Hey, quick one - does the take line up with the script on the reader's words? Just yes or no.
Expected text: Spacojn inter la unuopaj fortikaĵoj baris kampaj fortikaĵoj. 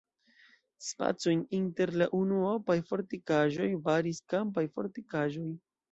yes